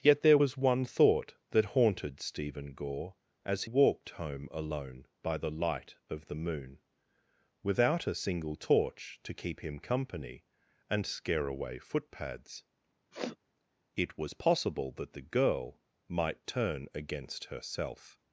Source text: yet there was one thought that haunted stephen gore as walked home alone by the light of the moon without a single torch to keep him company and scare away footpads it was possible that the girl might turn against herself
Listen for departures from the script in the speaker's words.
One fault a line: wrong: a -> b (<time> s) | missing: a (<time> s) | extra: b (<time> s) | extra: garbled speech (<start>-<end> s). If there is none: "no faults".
no faults